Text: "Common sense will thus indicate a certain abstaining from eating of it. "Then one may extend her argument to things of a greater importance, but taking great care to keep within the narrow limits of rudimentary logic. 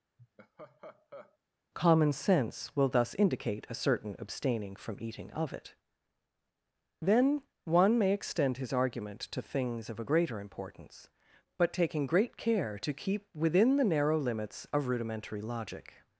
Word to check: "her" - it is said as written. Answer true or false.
false